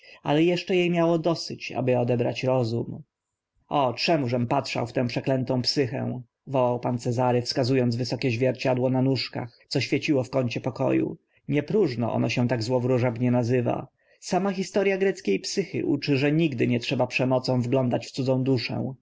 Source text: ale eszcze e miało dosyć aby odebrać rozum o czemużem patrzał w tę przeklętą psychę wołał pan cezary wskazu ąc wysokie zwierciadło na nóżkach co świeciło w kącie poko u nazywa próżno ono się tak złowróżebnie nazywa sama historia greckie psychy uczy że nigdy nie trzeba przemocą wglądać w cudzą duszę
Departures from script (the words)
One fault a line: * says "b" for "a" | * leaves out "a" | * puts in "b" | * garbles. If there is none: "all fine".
* says "nie" for "nazywa"